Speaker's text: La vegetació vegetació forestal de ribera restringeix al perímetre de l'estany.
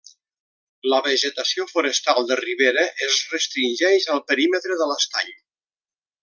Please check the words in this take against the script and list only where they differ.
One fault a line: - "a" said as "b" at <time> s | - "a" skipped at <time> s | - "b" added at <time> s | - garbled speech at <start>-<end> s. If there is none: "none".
- "vegetació" skipped at 1.6 s
- "es" added at 3.1 s